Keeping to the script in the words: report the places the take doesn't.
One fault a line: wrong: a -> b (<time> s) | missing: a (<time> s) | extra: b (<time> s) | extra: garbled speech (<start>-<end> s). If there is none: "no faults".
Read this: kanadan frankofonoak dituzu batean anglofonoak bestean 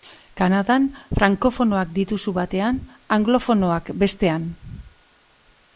no faults